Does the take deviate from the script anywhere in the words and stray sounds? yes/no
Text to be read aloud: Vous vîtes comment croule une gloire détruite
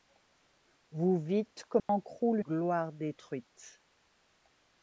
yes